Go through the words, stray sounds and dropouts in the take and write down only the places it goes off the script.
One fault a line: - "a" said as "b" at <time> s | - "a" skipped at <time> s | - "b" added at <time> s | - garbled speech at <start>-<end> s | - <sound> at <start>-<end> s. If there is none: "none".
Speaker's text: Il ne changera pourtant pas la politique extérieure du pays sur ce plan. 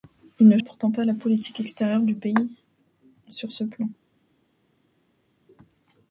- "changera" skipped at 0.6 s